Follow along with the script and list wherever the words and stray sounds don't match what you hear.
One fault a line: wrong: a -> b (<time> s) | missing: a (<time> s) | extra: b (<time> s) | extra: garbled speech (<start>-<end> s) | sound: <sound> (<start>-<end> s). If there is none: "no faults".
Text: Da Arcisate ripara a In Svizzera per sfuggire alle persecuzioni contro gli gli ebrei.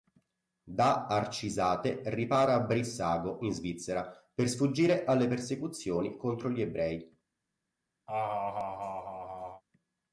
extra: Brissago (2.6 s)
missing: gli (6.6 s)
sound: laugh (8.1-9.6 s)